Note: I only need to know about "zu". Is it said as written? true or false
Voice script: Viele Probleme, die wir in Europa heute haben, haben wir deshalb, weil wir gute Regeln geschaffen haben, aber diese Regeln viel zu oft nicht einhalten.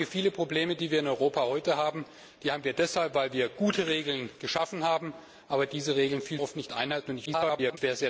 false